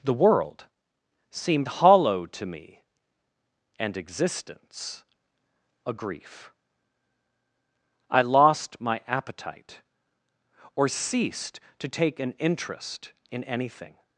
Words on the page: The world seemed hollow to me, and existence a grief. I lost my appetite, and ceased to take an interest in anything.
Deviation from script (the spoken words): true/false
true